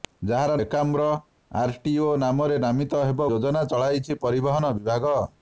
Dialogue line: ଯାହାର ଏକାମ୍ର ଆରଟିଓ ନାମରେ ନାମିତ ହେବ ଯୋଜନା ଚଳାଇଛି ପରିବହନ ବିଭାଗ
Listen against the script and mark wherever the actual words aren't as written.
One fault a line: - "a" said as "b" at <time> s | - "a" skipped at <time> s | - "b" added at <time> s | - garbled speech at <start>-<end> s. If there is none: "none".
none